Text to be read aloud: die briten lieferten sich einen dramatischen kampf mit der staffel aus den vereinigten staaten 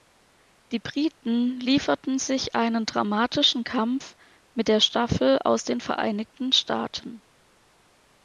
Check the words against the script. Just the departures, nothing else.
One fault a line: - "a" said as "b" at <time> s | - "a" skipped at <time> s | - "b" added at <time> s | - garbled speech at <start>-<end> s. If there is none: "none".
none